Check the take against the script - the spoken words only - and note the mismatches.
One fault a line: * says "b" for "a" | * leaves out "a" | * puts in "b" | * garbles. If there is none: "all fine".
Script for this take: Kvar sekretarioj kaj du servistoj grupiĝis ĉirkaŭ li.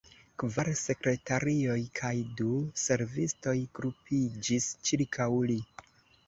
all fine